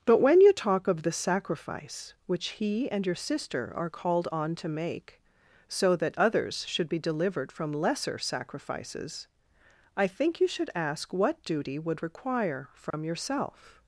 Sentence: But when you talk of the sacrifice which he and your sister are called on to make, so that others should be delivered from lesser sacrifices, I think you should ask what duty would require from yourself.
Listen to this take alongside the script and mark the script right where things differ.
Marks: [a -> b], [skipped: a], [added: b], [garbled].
But when you talk of the sacrifice which he and your sister are called on to make, so that others should be delivered from lesser sacrifices, I think you should ask what duty would require from yourself.